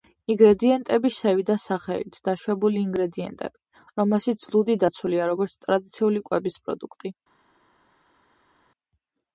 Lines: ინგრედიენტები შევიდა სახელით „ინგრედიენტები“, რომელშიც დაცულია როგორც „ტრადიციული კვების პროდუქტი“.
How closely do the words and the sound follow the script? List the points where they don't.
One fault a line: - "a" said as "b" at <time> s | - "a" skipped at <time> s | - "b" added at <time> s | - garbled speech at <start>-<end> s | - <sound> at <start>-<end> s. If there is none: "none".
- "დაშვებული" added at 2.3 s
- "ლუდი" added at 4.6 s